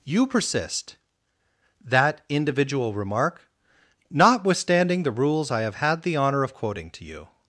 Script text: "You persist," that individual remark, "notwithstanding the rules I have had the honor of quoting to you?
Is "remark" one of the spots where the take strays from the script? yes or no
no